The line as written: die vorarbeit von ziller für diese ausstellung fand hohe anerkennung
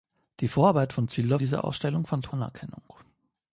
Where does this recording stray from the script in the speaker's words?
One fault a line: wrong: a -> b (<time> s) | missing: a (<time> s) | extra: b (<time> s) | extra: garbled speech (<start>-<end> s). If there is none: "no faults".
missing: für (1.4 s)
missing: hohe (2.3 s)